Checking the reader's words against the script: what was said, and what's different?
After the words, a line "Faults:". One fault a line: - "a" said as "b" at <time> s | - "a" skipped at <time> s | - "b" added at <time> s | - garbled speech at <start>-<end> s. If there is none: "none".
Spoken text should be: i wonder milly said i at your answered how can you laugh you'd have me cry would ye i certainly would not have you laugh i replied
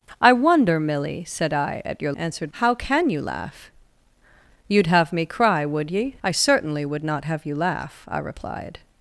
i wonder milly said i at your answered how can you laugh you'd have me cry would ye i certainly would not have you laugh i replied
Faults:
none